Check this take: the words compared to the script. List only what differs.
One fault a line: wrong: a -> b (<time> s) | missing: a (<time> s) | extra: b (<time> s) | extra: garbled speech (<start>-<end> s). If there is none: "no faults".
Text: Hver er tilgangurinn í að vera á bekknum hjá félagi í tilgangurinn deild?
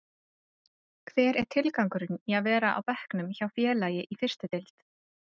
wrong: tilgangurinn -> fyrstu (4.2 s)